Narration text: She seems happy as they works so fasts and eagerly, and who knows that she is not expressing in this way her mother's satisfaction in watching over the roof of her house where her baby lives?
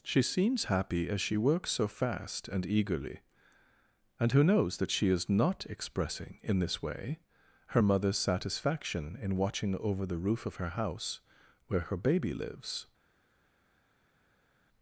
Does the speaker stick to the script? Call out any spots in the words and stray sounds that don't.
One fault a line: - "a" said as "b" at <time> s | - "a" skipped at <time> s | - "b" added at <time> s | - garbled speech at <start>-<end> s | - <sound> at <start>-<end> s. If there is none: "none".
- "they" said as "she" at 1.2 s
- "fasts" said as "fast" at 1.9 s